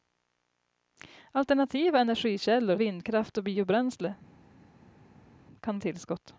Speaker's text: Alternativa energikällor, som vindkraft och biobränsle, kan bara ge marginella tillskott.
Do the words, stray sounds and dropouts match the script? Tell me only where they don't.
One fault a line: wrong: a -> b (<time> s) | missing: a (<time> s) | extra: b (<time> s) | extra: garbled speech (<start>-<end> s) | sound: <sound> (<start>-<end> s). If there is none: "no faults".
missing: som (2.8 s)
missing: bara ge marginella (5.8 s)